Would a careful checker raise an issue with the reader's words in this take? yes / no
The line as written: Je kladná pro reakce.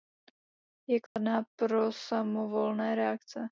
yes